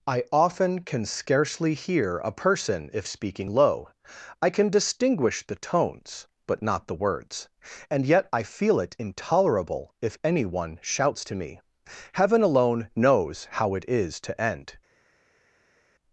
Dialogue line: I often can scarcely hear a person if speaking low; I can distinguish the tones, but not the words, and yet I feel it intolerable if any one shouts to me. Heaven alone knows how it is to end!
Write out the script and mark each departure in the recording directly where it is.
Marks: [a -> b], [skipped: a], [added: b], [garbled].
I often can scarcely hear a person if speaking low; I can distinguish the tones, but not the words, and yet I feel it intolerable if any one shouts to me. Heaven alone knows how it is to end!